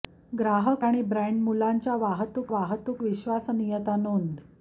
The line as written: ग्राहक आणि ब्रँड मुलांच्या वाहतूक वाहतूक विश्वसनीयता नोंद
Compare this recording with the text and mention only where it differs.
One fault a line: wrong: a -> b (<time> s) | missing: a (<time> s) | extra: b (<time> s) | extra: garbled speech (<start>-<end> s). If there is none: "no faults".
no faults